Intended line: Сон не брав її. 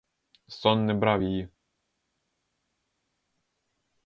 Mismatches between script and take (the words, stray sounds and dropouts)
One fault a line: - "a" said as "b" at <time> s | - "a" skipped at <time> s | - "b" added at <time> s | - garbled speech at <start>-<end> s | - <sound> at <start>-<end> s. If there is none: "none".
none